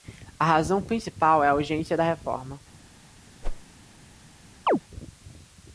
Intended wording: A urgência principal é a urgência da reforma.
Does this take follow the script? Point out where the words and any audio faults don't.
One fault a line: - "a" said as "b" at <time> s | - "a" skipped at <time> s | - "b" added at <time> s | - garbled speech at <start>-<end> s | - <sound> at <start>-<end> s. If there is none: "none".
- "urgência" said as "razão" at 0.5 s
- whoosh at 3.4-3.7 s
- chirp at 4.7-4.8 s